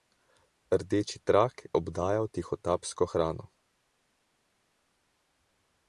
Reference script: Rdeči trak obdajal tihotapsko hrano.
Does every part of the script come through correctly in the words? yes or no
yes